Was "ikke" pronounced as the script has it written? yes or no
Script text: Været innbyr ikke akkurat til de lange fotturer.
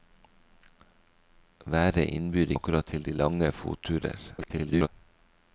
no